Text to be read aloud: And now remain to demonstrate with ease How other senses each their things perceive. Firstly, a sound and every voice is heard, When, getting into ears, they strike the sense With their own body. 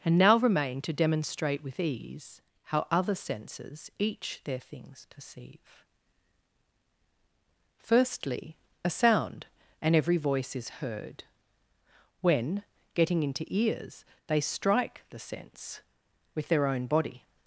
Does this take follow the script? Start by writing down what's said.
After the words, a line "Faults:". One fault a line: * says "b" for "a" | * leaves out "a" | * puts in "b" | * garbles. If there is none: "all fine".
And now remain to demonstrate with ease How other senses each their things perceive. Firstly, a sound and every voice is heard, When, getting into ears, they strike the sense With their own body.
Faults:
all fine